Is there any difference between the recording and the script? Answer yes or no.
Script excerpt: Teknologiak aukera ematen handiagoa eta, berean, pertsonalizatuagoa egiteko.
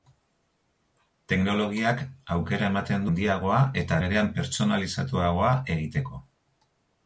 no